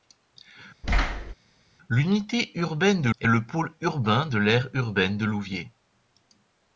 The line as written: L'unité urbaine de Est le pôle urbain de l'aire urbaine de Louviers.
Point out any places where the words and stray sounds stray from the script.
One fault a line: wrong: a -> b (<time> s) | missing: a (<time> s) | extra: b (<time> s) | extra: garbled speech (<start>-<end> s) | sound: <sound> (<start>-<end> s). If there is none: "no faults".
sound: thud (0.8-1.3 s)